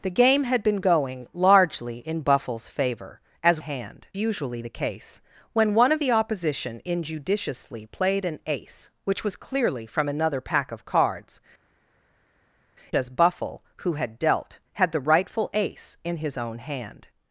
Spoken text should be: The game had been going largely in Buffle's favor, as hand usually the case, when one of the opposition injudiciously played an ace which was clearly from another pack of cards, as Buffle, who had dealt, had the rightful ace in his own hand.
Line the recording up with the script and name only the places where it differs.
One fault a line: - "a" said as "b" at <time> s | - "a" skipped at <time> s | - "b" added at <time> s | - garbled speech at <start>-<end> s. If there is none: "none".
none